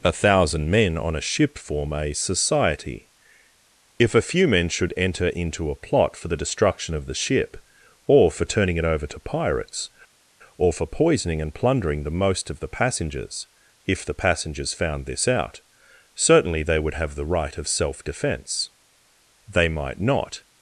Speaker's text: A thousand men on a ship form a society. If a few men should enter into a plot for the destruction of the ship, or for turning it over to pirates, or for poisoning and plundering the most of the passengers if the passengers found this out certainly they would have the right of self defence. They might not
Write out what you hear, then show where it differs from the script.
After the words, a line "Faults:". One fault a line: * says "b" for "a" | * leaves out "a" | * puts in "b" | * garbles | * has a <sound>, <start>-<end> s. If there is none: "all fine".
A thousand men on a ship form a society. If a few men should enter into a plot for the destruction of the ship, or for turning it over to pirates, or for poisoning and plundering the most of the passengers if the passengers found this out certainly they would have the right of self defence. They might not
Faults:
all fine